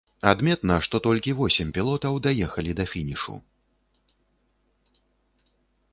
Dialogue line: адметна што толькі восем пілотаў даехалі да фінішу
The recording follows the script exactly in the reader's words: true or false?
true